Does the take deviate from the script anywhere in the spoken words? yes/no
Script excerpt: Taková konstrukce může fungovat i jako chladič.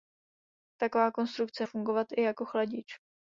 yes